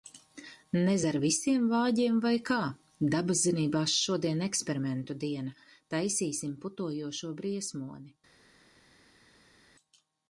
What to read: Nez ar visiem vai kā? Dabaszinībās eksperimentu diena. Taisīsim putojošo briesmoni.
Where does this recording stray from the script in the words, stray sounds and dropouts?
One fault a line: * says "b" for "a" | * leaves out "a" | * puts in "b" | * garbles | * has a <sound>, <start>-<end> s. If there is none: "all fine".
* puts in "vāģiem"
* puts in "šodien"